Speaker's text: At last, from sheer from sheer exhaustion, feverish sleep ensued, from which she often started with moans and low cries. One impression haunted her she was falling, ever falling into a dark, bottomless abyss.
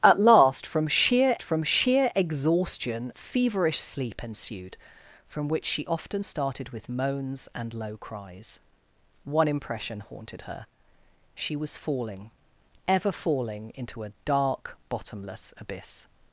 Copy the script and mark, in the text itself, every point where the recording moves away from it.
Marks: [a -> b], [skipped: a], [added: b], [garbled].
At last, from sheer from sheer exhaustion, feverish sleep ensued, from which she often started with moans and low cries. One impression haunted her she was falling, ever falling into a dark, bottomless abyss.